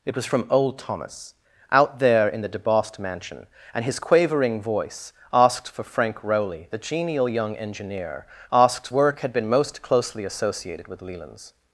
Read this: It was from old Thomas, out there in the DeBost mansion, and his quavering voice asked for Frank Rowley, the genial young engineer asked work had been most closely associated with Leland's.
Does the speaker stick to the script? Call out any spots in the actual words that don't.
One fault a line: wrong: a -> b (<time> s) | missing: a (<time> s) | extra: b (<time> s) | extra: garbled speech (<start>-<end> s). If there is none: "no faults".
no faults